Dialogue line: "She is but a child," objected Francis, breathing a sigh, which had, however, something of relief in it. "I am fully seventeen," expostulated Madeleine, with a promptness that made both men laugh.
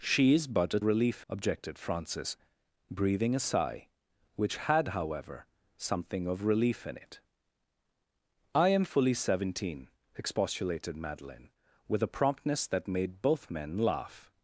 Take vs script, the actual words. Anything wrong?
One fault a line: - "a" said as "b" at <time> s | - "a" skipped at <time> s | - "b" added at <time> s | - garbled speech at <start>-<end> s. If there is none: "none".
- "child" said as "relief" at 0.8 s